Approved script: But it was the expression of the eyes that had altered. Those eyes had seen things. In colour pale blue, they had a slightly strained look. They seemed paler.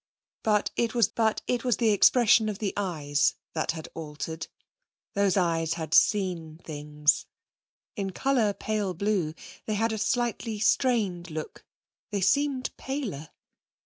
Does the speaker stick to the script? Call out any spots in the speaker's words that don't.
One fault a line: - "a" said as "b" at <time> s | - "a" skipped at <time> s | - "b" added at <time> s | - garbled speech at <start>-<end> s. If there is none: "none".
- "but it was" added at 1.1 s